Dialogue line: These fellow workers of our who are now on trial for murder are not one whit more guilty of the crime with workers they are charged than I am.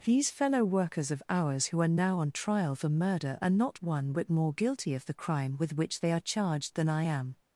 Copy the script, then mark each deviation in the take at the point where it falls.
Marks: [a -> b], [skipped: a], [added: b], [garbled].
These fellow workers of [our -> ours] who are now on trial for murder are not one whit more guilty of the crime with [workers -> which] they are charged than I am.